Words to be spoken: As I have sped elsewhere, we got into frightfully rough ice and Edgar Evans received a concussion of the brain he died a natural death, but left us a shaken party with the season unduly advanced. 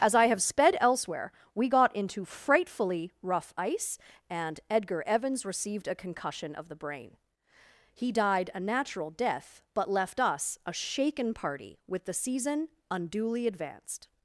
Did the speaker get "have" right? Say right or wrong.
right